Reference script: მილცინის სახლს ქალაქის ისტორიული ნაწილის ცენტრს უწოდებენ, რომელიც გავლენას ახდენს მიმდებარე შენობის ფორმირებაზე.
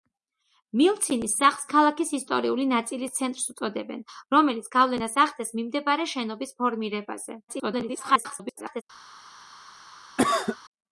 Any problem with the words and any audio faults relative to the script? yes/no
yes